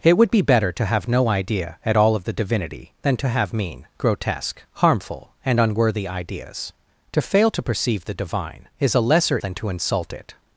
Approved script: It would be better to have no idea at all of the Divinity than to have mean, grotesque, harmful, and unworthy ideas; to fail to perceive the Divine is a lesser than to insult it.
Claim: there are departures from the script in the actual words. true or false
false